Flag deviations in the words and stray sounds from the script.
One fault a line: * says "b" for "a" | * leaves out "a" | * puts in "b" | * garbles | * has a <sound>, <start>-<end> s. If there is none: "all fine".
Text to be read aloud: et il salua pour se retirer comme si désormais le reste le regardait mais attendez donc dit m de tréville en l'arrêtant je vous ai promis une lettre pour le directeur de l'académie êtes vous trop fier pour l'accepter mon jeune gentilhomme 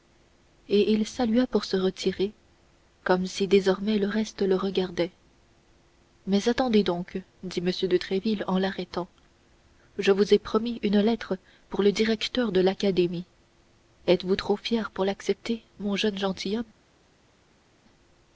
all fine